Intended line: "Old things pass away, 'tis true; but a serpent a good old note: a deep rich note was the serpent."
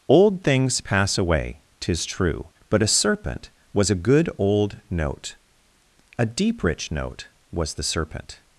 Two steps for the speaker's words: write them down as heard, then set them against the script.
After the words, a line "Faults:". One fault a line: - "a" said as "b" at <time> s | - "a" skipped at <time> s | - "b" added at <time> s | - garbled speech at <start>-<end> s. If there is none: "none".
"Old things pass away, 'tis true; but a serpent was a good old note: a deep rich note was the serpent."
Faults:
- "was" added at 3.7 s